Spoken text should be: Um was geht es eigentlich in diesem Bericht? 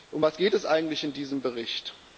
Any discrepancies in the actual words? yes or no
no